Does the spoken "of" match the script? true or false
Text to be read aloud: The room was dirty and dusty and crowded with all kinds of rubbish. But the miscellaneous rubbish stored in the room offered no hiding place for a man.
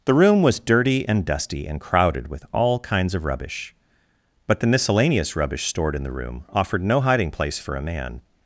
true